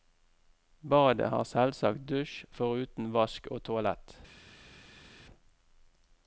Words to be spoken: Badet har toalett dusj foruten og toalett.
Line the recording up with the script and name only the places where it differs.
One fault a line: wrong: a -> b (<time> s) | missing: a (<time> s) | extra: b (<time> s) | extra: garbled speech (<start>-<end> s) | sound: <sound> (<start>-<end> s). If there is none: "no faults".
wrong: toalett -> selvsagt (1.5 s)
extra: vask (3.2 s)